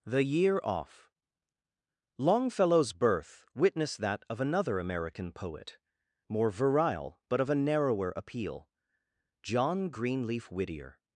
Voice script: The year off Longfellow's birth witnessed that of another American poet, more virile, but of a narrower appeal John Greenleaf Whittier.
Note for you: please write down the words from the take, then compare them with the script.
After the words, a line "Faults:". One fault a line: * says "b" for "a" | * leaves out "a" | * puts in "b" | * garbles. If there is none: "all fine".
The year off Longfellow's birth witnessed that of another American poet, more virile, but of a narrower appeal John Greenleaf Whittier.
Faults:
all fine